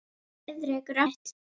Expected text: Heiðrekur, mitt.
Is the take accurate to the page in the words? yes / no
yes